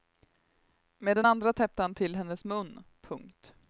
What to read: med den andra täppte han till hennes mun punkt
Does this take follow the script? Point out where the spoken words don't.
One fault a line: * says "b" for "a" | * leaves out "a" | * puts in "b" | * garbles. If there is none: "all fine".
all fine